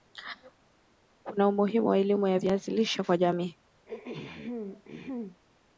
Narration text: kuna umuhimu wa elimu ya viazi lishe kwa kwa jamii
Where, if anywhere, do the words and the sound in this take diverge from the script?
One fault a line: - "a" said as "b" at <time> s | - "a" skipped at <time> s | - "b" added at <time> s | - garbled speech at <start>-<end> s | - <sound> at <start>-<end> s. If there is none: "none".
- "kwa" skipped at 3.2 s
- throat clearing at 3.9-5.4 s